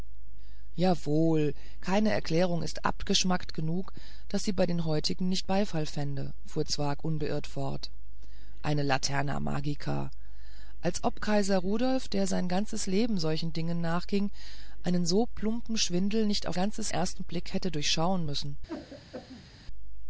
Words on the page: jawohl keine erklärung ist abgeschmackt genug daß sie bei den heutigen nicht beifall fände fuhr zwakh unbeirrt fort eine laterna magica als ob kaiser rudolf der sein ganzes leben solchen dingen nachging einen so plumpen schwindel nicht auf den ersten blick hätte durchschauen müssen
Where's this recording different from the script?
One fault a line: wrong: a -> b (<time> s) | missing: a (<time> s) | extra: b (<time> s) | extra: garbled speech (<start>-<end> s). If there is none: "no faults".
wrong: den -> ganzes (16.5 s)